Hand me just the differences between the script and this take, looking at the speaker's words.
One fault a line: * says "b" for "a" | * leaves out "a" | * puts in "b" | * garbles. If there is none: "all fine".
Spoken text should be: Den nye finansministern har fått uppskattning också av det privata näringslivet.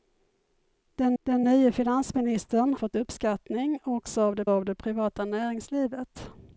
* puts in "den"
* leaves out "har"
* puts in "av det"